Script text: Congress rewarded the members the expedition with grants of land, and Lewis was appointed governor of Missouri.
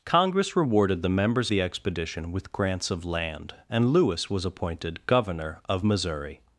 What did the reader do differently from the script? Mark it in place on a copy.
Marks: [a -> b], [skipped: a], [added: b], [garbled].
Congress rewarded the members the expedition with grants of land, and Lewis was appointed governor of Missouri.